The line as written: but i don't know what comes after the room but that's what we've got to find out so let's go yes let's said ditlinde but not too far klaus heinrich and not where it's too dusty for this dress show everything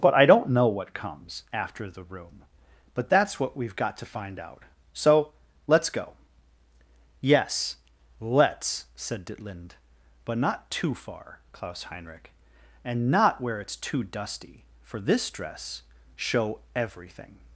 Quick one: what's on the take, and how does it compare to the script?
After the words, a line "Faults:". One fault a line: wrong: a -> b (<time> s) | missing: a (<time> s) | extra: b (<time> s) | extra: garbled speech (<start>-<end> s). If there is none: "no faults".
but i don't know what comes after the room but that's what we've got to find out so let's go yes let's said ditlinde but not too far klaus heinrich and not where it's too dusty for this dress show everything
Faults:
no faults